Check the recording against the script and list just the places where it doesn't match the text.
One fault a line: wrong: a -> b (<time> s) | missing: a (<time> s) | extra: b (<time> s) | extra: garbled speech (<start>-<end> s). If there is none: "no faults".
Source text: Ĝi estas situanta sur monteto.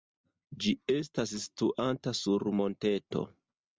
no faults